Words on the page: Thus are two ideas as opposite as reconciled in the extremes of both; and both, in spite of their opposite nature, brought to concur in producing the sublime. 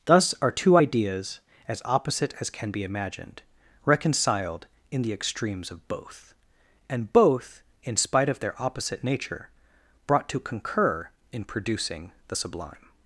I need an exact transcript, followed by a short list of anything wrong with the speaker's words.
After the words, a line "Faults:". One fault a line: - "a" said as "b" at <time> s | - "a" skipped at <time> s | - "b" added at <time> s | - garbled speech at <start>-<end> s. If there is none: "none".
Thus are two ideas as opposite as can be imagined reconciled in the extremes of both; and both, in spite of their opposite nature, brought to concur in producing the sublime.
Faults:
- "can be imagined" added at 2.5 s